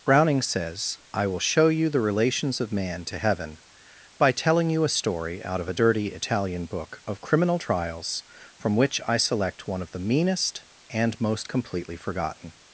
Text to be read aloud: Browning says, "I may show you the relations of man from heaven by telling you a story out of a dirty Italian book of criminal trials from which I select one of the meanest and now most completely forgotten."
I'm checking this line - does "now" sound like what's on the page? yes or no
no